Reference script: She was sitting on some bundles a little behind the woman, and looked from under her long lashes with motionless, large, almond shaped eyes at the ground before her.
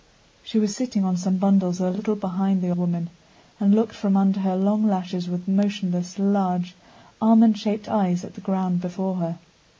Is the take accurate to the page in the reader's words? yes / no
yes